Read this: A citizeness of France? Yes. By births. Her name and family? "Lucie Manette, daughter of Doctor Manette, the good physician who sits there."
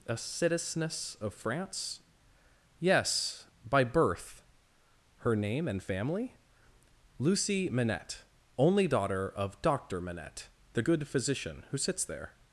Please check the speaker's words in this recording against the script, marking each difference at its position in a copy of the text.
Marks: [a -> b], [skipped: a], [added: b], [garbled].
A citizeness of France? Yes. By [births. -> birth] Her name and family? "Lucie Manette, [added: only] daughter of Doctor Manette, the good physician who sits there."